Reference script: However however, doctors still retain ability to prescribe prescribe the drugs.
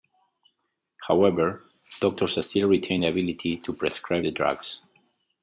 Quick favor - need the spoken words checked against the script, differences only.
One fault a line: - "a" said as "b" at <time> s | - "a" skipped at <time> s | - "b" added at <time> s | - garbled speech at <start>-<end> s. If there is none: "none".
- "however" skipped at 1.6 s
- "the" added at 3.0 s
- "prescribe" skipped at 4.2 s